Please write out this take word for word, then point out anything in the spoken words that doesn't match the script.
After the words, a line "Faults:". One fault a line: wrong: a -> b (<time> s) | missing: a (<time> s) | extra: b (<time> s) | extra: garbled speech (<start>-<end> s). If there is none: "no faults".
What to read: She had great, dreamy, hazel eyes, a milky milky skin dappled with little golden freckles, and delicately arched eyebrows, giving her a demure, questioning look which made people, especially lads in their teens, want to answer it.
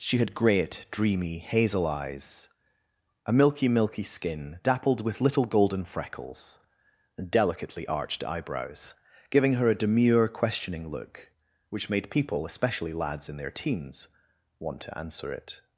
She had great, dreamy, hazel eyes, a milky milky skin dappled with little golden freckles, and delicately arched eyebrows, giving her a demure, questioning look which made people, especially lads in their teens, want to answer it.
Faults:
no faults